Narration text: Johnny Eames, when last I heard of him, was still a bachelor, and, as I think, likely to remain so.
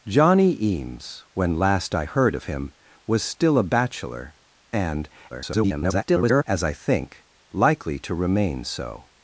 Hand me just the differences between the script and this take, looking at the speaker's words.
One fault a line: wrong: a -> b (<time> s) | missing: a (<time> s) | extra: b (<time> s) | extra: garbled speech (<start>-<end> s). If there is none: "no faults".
extra: garbled speech (5.3-6.4 s)